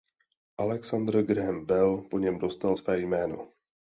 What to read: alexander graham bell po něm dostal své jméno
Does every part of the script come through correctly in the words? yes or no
yes